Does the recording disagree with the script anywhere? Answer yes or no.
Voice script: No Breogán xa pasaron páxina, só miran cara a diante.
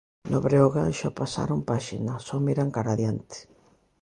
no